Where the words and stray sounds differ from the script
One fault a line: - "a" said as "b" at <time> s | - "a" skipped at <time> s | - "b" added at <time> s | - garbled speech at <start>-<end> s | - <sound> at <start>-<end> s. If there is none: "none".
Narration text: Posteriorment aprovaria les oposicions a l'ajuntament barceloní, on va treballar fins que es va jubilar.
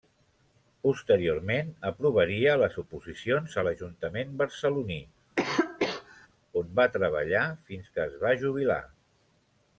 - cough at 5.4-6.3 s